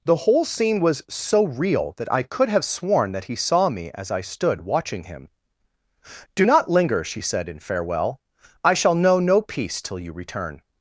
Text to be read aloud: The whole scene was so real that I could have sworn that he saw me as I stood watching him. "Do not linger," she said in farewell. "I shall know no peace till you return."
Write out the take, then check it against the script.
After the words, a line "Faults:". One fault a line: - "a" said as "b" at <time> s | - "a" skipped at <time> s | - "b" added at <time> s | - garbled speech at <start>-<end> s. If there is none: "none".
The whole scene was so real that I could have sworn that he saw me as I stood watching him. "Do not linger," she said in farewell. "I shall know no peace till you return."
Faults:
none